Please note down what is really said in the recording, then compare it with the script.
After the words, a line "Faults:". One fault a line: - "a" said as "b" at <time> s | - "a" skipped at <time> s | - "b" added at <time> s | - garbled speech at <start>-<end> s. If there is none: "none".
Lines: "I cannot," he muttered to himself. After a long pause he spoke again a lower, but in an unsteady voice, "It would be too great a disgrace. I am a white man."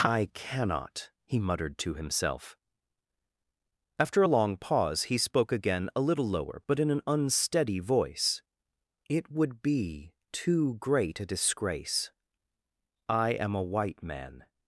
"I cannot," he muttered to himself. After a long pause he spoke again a little lower, but in an unsteady voice, "It would be too great a disgrace. I am a white man."
Faults:
- "little" added at 6.0 s